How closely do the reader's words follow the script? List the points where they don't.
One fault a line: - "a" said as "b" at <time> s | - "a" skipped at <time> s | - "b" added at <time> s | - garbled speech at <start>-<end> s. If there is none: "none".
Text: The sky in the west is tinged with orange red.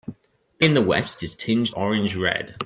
- "sky" skipped at 0.7 s
- "with" skipped at 1.8 s